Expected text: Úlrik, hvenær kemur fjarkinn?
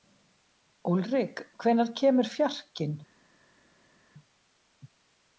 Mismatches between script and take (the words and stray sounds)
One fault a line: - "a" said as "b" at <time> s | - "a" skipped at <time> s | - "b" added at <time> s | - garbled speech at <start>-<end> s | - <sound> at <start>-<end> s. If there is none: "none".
none